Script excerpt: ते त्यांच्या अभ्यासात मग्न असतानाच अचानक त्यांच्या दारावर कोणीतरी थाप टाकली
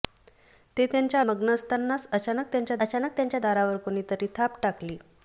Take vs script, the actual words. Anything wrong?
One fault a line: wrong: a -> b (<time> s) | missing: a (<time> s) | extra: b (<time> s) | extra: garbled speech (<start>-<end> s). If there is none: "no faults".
missing: अभ्यासात (1.2 s)
extra: अचानक त्यांच्या (2.8 s)